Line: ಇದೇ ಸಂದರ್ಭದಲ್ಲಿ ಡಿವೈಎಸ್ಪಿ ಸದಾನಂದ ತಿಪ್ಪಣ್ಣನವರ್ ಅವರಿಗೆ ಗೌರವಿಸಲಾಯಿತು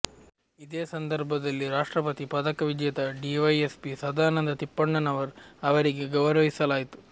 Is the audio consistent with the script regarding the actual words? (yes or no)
no